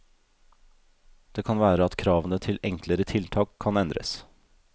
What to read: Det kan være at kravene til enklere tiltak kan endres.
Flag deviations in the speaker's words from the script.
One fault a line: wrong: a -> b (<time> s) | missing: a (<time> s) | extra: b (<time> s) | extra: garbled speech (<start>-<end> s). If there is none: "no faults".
no faults